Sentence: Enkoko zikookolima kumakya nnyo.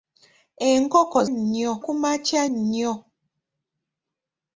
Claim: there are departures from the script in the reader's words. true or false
true